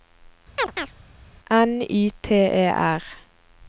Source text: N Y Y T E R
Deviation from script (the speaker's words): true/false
true